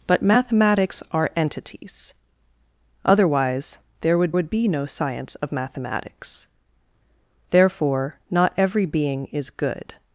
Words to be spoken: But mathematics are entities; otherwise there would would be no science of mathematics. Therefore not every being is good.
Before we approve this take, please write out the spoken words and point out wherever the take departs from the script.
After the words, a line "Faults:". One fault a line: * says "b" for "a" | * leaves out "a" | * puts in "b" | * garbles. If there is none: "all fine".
But mathematics are entities; otherwise there would would be no science of mathematics. Therefore not every being is good.
Faults:
all fine